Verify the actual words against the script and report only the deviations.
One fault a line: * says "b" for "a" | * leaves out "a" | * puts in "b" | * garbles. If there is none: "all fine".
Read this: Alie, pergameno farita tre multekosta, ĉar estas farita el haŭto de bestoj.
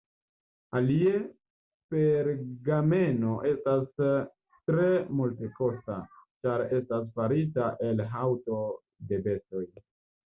* says "estas" for "farita"